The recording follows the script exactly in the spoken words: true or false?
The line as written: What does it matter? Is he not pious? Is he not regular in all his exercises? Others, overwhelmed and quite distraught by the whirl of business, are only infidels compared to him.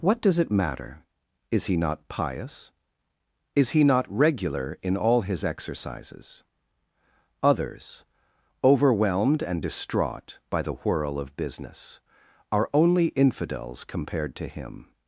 false